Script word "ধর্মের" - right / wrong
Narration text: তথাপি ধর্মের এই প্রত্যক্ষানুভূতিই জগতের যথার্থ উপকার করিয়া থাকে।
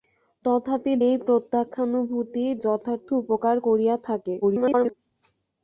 wrong